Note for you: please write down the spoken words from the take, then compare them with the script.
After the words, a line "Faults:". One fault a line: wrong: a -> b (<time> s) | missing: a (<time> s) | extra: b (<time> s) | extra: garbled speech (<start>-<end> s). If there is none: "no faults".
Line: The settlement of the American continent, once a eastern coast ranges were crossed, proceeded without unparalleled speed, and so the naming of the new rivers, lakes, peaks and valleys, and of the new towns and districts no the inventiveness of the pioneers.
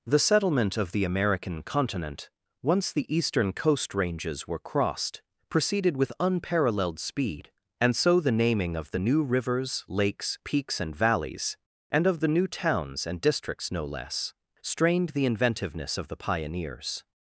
The settlement of the American continent, once the eastern coast ranges were crossed, proceeded with unparalleled speed, and so the naming of the new rivers, lakes, peaks and valleys, and of the new towns and districts no less, strained the inventiveness of the pioneers.
Faults:
wrong: a -> the (2.9 s)
wrong: without -> with (6.0 s)
extra: less strained (13.8 s)